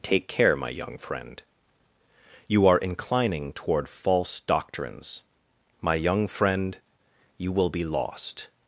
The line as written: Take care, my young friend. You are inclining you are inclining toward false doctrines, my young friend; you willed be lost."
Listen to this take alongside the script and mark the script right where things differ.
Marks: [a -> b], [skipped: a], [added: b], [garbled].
Take care, my young friend. You are inclining [skipped: you are inclining] toward false doctrines, my young friend; you [willed -> will] be lost."